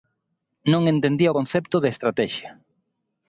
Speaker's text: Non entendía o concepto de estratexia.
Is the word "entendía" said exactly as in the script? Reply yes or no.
yes